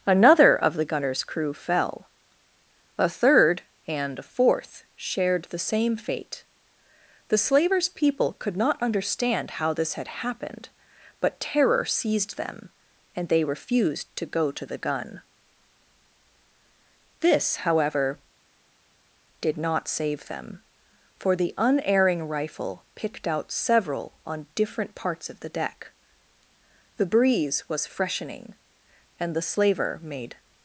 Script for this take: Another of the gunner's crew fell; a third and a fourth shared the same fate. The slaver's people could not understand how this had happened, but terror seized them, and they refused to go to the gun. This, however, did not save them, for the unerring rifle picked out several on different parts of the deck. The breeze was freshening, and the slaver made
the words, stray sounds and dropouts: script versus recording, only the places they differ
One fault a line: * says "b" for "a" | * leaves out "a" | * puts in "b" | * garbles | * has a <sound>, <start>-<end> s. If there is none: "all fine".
all fine